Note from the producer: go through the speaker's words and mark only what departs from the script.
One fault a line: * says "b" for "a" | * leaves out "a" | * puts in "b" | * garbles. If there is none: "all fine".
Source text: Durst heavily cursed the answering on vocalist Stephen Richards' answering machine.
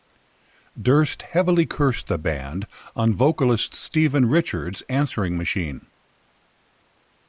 * says "band" for "answering"